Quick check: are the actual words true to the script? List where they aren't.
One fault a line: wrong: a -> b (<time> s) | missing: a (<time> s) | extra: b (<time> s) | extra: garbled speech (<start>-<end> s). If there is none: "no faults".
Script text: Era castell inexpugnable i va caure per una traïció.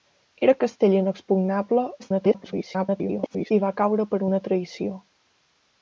extra: garbled speech (2.0-3.5 s)